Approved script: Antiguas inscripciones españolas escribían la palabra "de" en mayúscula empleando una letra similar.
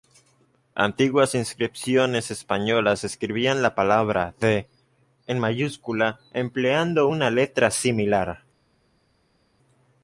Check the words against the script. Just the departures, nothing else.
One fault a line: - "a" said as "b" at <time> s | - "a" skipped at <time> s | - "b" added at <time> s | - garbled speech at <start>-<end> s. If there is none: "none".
none